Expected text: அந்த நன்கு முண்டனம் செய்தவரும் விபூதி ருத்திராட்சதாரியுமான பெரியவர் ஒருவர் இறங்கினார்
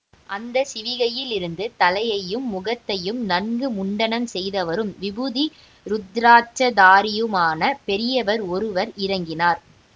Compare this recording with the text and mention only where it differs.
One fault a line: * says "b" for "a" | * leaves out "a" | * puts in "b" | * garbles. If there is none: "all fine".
* puts in "சிவிகையிலிருந்து தலையையும் முகத்தையும்"